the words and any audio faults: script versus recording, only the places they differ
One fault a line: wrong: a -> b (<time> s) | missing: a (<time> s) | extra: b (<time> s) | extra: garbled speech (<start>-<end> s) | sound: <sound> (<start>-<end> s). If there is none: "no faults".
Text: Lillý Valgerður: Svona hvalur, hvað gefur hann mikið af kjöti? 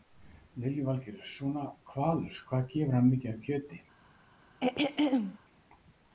sound: throat clearing (4.6-5.4 s)